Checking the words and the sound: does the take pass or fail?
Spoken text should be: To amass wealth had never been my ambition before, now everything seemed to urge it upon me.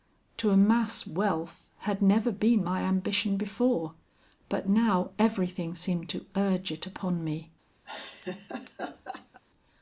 fail